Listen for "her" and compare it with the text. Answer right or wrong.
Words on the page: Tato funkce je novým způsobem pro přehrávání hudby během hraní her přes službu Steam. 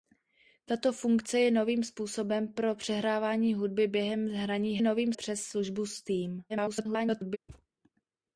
wrong